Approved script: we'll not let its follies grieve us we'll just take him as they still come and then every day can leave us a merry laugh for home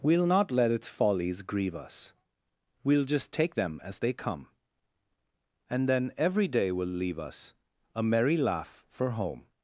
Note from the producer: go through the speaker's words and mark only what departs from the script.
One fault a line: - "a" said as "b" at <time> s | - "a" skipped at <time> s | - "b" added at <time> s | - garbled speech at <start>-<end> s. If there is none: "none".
- "him" said as "them" at 3.5 s
- "still" skipped at 4.1 s
- "can" said as "will" at 6.7 s